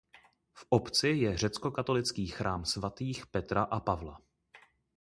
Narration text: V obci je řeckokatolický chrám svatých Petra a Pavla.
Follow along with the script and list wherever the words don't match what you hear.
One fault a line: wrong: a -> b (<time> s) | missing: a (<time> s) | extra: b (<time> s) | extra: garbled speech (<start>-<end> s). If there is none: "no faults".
no faults